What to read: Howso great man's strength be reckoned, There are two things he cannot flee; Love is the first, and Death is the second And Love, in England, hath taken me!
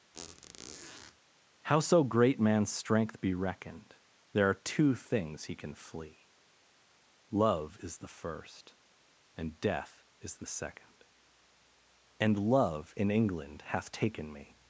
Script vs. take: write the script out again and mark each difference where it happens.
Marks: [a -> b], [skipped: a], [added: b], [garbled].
Howso great man's strength be reckoned, There are two things he [cannot -> can] flee; Love is the first, and Death is the second And Love, in England, hath taken me!